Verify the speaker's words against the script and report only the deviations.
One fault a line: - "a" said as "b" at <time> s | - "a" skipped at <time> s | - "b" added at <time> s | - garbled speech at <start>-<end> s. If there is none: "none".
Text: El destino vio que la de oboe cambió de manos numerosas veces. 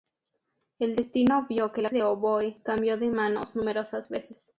none